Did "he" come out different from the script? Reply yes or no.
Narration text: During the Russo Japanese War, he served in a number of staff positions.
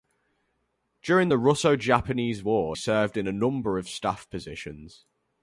yes